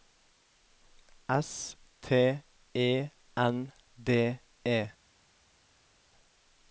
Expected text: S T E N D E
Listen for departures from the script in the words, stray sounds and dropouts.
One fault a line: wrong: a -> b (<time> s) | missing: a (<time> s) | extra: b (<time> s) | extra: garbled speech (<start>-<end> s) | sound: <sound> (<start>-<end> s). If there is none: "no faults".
no faults